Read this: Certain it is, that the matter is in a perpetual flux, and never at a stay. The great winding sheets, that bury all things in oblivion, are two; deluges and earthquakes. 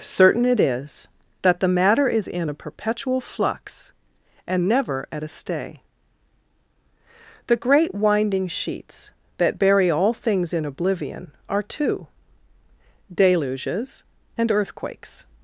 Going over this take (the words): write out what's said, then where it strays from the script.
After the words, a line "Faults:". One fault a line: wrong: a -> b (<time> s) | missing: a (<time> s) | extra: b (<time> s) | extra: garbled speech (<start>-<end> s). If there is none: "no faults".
Certain it is, that the matter is in a perpetual flux, and never at a stay. The great winding sheets, that bury all things in oblivion, are two; deluges and earthquakes.
Faults:
no faults